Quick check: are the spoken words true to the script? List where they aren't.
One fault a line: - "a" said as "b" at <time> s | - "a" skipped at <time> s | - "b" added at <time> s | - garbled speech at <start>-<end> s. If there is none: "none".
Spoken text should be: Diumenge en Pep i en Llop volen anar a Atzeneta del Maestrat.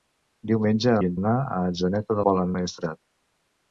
- "en Pep" skipped at 0.9 s
- "Llop volen" skipped at 1.2 s
- "del" said as "volen" at 2.3 s